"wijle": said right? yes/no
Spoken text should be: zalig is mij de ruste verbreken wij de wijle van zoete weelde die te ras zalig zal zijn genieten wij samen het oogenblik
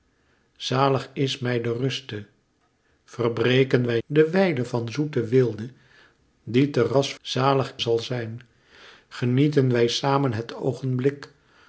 yes